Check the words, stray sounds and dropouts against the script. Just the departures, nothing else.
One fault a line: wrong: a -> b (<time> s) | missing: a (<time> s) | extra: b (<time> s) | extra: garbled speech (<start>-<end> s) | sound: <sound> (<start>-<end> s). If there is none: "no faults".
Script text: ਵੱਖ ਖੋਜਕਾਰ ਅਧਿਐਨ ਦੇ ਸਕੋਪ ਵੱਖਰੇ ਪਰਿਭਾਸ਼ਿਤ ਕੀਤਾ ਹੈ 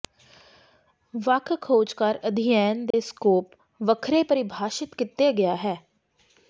sound: dropout (2.9-2.9 s)
extra: ਗਿਆ (5.3 s)